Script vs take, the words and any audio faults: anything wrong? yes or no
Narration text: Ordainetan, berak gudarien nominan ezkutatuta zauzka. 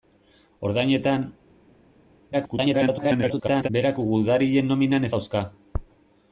yes